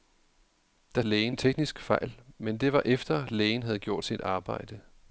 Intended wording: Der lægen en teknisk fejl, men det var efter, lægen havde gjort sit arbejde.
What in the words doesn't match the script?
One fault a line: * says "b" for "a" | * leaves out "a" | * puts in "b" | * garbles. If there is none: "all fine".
all fine